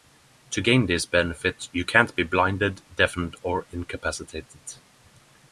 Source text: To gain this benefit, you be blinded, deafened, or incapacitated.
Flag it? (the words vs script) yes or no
yes